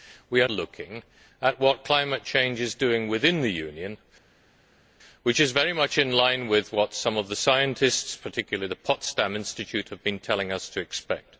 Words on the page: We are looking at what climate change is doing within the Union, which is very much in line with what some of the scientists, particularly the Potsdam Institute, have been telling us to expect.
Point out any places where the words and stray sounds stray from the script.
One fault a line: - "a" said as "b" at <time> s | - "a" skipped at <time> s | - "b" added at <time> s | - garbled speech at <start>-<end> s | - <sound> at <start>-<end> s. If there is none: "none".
none